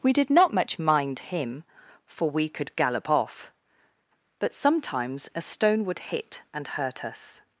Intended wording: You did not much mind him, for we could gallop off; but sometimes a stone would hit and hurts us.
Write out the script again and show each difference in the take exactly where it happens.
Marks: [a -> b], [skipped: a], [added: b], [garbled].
[You -> We] did not much mind him, for we could gallop off; but sometimes a stone would hit and [hurts -> hurt] us.